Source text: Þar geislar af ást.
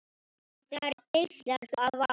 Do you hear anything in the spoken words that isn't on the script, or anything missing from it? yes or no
no